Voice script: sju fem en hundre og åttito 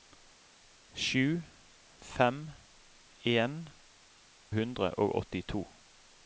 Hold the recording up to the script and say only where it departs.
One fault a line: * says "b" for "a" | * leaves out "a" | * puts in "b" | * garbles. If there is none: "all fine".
all fine